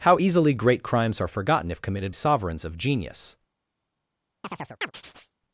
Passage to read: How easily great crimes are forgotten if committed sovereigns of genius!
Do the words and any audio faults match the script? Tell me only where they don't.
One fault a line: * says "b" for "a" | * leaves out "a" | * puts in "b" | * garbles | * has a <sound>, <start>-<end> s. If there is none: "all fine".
* has a chirp, 4.4-5.3 s